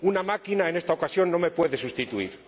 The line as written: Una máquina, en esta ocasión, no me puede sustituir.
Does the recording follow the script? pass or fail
pass